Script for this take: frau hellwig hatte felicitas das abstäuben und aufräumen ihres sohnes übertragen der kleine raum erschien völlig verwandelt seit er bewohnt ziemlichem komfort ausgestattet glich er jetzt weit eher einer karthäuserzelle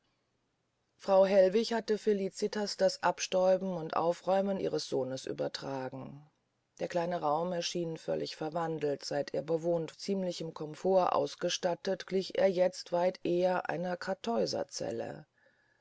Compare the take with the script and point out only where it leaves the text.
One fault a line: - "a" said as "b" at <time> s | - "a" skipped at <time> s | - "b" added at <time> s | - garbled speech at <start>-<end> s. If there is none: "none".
none